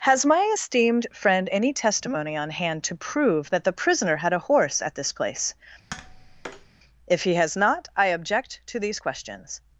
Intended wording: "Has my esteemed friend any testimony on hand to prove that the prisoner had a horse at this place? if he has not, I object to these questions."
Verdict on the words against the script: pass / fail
pass